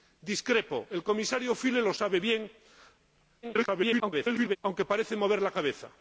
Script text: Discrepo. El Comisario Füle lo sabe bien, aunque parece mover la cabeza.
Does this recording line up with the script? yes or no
no